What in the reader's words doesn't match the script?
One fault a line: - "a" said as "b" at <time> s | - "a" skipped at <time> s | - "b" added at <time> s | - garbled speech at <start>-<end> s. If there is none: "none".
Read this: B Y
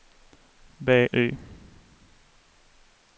none